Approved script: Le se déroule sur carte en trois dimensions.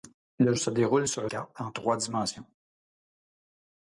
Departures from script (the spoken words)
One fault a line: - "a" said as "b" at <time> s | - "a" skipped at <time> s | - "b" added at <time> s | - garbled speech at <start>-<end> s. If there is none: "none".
none